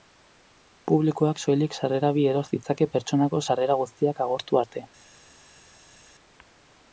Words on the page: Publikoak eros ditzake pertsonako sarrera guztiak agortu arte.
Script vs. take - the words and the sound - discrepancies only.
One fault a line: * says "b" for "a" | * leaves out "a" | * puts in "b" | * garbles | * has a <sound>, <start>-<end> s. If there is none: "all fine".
* puts in "soilik sarrera bi"